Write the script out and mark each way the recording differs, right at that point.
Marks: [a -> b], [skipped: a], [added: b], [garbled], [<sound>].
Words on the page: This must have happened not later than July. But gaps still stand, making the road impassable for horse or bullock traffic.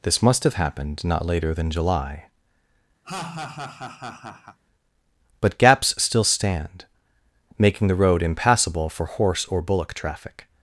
This must have happened not later than July. [laugh] But gaps still stand, making the road impassable for horse or bullock traffic.